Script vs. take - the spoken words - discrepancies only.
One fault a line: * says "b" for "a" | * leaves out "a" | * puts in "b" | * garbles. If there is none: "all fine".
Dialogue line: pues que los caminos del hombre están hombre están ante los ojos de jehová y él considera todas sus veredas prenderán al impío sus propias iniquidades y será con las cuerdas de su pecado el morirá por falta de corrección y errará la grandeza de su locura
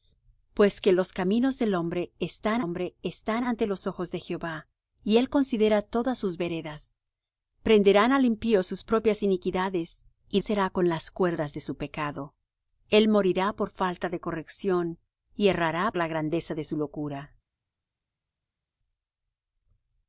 all fine